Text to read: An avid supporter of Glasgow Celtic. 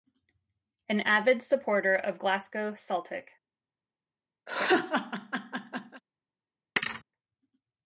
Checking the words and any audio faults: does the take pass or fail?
fail